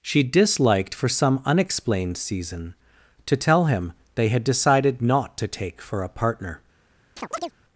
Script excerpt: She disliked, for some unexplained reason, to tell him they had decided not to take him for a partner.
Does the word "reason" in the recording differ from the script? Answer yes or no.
yes